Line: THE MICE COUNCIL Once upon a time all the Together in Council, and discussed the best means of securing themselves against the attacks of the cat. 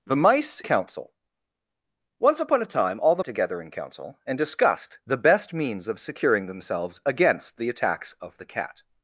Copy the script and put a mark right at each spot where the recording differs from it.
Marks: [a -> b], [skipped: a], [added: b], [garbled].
THE MICE COUNCIL Once upon a time all the Together in Council, and discussed the best means of securing themselves against the attacks of the cat.